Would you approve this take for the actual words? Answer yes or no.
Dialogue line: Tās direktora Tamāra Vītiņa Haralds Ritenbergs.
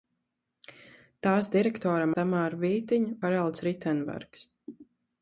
yes